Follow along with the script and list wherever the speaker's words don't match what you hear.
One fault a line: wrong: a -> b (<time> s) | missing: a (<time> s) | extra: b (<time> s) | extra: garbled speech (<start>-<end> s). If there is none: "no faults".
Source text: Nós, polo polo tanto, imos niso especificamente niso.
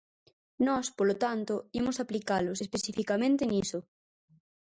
missing: polo (1.1 s)
wrong: niso -> aplicalos (2.0 s)